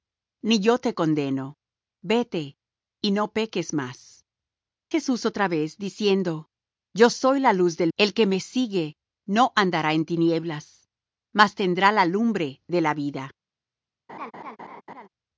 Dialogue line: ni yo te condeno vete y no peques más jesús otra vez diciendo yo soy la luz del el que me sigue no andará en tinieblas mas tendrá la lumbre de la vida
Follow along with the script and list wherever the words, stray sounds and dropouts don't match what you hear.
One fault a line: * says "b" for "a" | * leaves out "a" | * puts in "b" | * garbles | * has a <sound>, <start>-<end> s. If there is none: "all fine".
* has a laugh, 14.1-15.1 s